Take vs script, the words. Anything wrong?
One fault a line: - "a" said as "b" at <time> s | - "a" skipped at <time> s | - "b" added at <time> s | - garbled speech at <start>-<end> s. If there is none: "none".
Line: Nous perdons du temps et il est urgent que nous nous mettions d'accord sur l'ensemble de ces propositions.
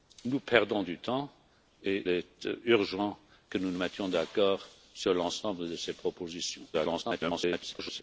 - "il" skipped at 2.0 s
- garbled speech at 6.7-8.0 s